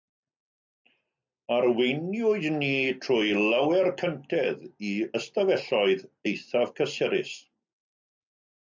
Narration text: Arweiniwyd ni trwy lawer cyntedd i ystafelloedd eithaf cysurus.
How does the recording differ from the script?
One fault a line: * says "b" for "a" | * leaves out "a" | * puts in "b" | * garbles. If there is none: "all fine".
all fine